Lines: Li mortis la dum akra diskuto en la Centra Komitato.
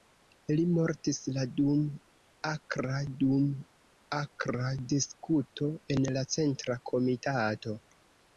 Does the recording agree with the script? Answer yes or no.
no